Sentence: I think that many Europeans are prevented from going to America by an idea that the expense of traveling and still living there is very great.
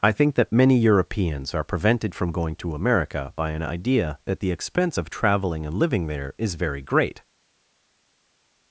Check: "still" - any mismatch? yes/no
yes